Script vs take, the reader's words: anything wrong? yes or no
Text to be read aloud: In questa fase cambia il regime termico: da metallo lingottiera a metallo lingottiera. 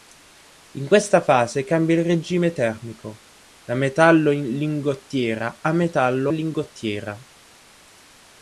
no